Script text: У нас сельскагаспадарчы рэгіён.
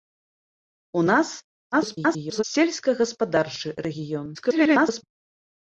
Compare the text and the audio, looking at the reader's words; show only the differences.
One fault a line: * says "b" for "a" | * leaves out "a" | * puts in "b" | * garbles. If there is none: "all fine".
* garbles
* garbles